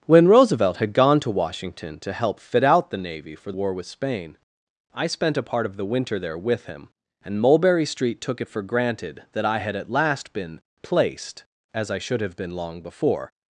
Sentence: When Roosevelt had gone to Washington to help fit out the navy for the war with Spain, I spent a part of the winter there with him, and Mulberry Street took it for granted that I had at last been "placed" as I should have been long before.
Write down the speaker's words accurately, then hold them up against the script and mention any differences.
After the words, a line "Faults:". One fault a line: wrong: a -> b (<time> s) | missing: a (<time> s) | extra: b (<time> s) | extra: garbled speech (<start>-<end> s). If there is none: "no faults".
When Roosevelt had gone to Washington to help fit out the navy for war with Spain, I spent a part of the winter there with him, and Mulberry Street took it for granted that I had at last been "placed" as I should have been long before.
Faults:
missing: the (3.5 s)